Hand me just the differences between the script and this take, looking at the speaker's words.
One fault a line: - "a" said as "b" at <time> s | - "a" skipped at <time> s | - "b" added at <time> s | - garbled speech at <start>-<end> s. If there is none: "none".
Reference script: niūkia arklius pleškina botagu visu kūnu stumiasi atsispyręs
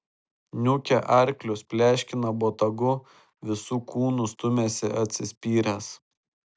none